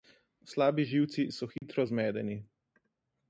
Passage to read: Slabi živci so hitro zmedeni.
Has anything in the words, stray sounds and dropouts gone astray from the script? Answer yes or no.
yes